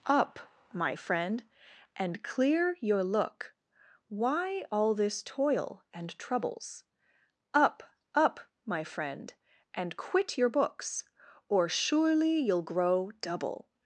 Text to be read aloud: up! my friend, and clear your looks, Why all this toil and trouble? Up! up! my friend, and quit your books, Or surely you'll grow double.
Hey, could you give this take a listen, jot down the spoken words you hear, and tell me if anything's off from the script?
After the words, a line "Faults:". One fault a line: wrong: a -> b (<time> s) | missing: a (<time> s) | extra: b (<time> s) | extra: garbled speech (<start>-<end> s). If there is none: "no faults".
up! my friend, and clear your look, Why all this toil and troubles? Up! up! my friend, and quit your books, Or surely you'll grow double.
Faults:
wrong: looks -> look (3.0 s)
wrong: trouble -> troubles (6.2 s)